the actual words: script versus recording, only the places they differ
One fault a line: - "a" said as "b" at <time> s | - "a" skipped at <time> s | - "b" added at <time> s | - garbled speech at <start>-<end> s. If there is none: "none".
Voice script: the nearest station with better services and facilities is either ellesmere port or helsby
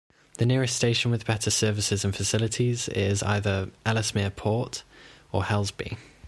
none